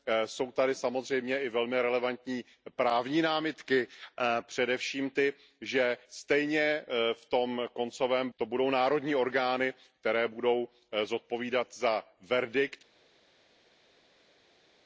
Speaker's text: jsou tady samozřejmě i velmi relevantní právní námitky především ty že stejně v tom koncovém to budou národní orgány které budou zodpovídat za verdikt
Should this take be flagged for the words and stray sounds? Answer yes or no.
no